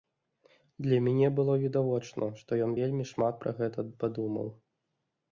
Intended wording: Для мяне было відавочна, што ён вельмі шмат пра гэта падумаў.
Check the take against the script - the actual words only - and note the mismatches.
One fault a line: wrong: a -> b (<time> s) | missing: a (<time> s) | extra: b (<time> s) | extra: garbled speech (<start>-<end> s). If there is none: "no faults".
no faults